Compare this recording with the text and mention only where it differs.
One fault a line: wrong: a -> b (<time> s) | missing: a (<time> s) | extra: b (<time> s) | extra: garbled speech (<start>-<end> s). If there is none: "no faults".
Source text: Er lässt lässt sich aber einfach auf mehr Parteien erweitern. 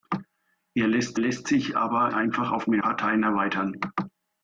no faults